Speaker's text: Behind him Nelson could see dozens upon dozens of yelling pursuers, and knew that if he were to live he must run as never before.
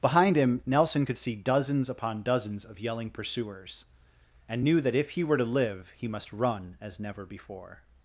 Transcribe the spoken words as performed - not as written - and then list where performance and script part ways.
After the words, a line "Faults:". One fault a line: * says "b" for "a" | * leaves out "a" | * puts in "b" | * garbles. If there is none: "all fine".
Behind him Nelson could see dozens upon dozens of yelling pursuers, and knew that if he were to live he must run as never before.
Faults:
all fine